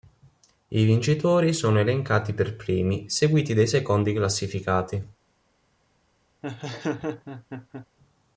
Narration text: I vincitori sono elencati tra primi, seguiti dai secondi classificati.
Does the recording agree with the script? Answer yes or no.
no